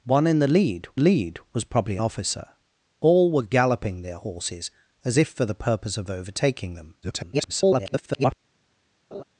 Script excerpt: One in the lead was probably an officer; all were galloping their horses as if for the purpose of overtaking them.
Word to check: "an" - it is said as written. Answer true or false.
false